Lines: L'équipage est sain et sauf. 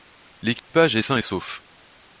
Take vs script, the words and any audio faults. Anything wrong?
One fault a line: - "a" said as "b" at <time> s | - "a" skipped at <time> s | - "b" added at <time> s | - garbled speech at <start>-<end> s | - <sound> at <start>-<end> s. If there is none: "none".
- dropout at 0.6-0.7 s